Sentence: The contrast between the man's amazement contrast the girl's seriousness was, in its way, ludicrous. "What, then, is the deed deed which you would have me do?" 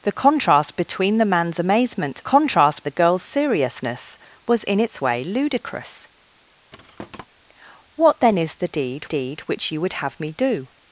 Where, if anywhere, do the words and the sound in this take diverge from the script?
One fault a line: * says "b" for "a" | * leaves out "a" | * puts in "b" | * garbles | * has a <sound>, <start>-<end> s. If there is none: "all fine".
* has a thud, 6.7-7.3 s